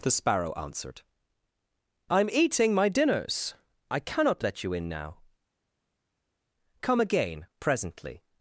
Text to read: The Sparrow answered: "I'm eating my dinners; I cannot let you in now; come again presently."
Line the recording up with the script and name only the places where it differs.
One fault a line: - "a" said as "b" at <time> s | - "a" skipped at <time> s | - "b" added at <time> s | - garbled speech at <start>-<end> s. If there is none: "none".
none